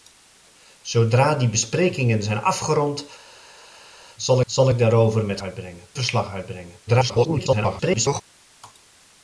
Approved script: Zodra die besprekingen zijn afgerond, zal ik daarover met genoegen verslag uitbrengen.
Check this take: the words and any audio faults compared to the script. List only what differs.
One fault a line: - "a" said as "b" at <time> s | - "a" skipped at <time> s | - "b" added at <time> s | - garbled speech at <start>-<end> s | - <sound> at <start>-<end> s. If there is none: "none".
- "zal" added at 4.5 s
- "genoegen" said as "uitbrengen" at 5.4 s
- garbled speech at 6.9-8.2 s